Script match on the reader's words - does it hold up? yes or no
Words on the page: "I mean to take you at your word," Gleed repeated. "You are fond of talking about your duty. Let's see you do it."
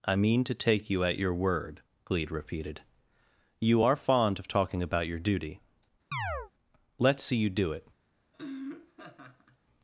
yes